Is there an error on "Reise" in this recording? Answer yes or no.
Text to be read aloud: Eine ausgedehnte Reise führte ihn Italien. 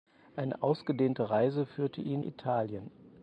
no